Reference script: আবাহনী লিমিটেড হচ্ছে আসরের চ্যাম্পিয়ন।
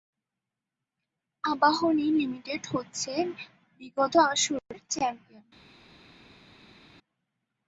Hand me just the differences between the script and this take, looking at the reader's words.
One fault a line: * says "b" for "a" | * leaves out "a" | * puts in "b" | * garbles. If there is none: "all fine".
* puts in "বিগত"